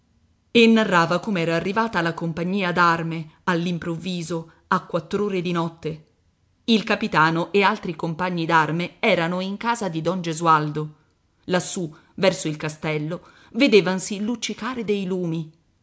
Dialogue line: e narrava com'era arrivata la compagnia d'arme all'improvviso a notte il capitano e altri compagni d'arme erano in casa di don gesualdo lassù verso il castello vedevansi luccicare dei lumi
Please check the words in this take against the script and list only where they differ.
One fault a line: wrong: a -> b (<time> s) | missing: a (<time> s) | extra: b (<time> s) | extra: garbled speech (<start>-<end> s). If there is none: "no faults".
extra: quattr'ore di (4.8 s)